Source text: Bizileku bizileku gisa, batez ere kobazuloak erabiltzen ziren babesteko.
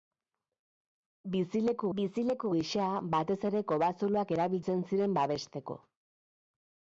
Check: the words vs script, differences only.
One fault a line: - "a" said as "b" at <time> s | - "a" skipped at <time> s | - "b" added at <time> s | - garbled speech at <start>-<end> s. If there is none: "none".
none